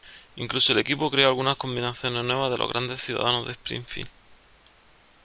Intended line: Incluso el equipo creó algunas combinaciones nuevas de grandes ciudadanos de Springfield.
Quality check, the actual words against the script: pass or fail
fail